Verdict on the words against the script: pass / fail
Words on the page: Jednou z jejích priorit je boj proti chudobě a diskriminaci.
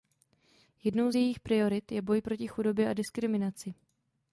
pass